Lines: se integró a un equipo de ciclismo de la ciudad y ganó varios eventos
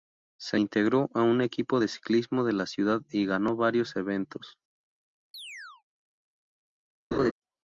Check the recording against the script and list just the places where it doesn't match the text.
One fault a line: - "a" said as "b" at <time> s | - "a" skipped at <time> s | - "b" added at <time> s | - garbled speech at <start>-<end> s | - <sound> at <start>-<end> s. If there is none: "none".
- chirp at 5.3-5.8 s
- laugh at 7.1-7.3 s